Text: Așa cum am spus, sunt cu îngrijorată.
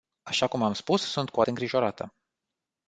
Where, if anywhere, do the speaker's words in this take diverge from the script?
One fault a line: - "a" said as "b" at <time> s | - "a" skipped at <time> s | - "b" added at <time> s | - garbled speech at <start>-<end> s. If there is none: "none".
none